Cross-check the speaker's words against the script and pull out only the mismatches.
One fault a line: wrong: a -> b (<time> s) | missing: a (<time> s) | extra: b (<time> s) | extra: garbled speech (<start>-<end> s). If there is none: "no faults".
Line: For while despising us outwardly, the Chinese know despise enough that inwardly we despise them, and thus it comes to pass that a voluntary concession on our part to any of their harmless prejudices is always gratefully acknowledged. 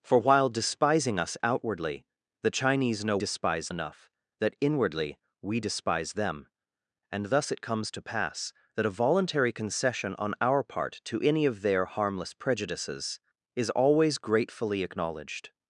no faults